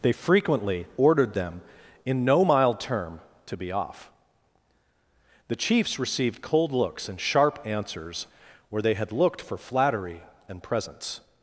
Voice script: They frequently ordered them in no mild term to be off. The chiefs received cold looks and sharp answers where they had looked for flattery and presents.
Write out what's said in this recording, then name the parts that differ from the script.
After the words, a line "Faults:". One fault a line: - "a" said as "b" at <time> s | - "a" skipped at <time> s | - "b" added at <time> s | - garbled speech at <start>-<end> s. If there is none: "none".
They frequently ordered them in no mild term to be off. The chiefs received cold looks and sharp answers where they had looked for flattery and presents.
Faults:
none